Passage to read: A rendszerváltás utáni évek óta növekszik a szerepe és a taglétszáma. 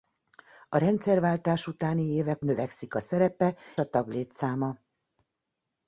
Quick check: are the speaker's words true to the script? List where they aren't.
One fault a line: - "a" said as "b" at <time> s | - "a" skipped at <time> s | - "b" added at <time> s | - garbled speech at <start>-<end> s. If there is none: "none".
- "óta" skipped at 2.5 s
- "és" skipped at 3.6 s